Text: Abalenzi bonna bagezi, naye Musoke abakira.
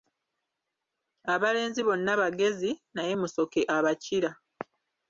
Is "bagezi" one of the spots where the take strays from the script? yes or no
no